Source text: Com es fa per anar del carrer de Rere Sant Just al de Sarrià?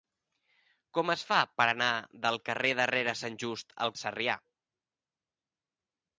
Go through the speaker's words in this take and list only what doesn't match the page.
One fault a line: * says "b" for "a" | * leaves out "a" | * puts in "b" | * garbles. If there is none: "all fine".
all fine